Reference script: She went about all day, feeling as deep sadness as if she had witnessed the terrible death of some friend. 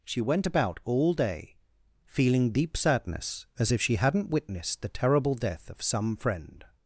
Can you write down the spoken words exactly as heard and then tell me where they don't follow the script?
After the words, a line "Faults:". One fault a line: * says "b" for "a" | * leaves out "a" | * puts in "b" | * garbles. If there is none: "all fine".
She went about all day, feeling deep sadness as if she hadn't witnessed the terrible death of some friend.
Faults:
* leaves out "as"
* says "hadn't" for "had"